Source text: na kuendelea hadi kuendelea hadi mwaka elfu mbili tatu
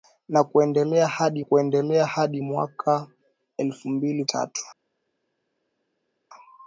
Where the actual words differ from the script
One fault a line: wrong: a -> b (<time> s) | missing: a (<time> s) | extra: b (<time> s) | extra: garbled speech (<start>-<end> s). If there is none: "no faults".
no faults